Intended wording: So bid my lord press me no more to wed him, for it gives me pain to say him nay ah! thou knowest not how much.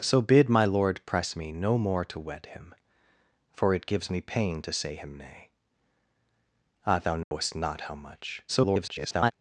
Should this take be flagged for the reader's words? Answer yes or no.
yes